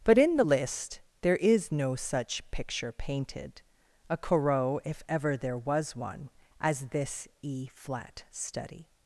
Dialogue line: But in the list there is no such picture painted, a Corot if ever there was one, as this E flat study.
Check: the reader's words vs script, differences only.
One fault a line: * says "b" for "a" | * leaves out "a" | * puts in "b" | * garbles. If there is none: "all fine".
all fine